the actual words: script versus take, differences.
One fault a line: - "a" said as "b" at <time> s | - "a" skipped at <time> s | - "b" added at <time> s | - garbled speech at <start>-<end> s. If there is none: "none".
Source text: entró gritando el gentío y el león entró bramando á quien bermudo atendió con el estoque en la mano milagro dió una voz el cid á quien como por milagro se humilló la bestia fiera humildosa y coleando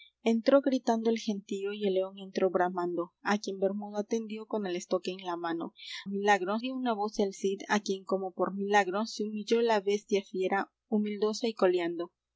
none